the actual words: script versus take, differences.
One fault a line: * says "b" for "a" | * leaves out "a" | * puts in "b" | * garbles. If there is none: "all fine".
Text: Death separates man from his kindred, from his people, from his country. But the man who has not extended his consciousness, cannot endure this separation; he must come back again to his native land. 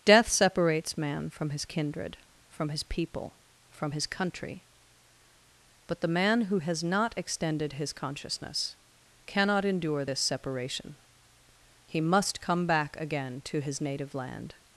all fine